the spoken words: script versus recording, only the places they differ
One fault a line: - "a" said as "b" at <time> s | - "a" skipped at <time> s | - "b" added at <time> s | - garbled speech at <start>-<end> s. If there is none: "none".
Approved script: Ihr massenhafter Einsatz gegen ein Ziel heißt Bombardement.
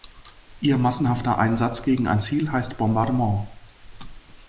none